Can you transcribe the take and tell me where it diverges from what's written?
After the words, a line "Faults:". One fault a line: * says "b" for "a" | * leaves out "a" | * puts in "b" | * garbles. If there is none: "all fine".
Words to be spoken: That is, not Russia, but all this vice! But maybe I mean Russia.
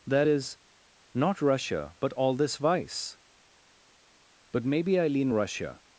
That is, not Russia, but all this vice! But maybe I lean Russia.
Faults:
* says "lean" for "mean"